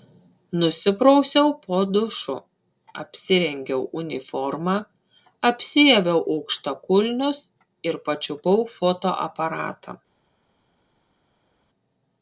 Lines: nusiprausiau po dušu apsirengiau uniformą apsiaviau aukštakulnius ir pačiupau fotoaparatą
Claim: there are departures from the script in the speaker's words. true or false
false